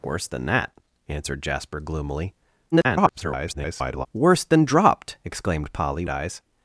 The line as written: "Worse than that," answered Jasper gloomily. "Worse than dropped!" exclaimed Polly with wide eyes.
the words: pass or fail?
fail